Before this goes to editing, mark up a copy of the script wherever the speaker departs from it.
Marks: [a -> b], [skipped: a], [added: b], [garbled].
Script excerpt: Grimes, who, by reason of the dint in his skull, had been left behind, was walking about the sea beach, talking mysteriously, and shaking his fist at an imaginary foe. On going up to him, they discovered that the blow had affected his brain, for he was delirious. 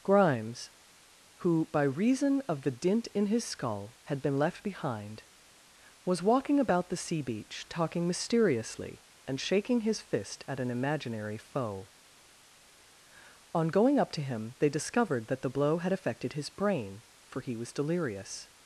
Grimes, who, by reason of the dint in his skull, had been left behind, was walking about the sea beach, talking mysteriously, and shaking his fist at an imaginary foe. On going up to him, they discovered that the blow had affected his brain, for he was delirious.